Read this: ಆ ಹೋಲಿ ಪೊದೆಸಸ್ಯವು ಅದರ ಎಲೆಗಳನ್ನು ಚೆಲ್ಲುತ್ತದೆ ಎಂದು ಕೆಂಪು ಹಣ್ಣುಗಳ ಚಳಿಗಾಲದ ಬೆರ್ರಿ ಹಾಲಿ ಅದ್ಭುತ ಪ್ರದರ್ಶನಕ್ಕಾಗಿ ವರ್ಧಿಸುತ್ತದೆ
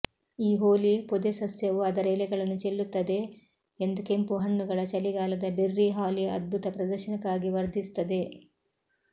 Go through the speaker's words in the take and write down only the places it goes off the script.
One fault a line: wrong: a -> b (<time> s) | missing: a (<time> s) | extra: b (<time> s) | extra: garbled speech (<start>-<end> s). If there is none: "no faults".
wrong: ಆ -> ಈ (0.4 s)